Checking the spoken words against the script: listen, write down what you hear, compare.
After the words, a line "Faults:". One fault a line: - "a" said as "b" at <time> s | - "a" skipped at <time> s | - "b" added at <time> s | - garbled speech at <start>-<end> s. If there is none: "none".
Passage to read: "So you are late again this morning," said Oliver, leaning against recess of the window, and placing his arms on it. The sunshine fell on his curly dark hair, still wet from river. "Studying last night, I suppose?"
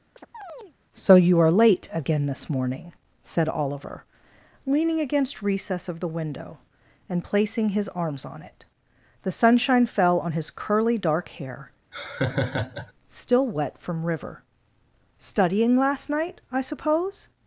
"So you are late again this morning," said Oliver, leaning against recess of the window, and placing his arms on it. The sunshine fell on his curly dark hair, still wet from river. "Studying last night, I suppose?"
Faults:
none